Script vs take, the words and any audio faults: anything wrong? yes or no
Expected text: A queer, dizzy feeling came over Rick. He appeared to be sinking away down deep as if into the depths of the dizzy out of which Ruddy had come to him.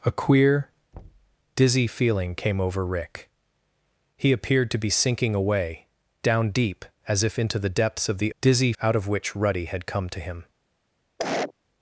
yes